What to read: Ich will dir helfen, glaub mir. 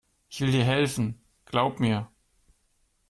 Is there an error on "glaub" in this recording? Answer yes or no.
no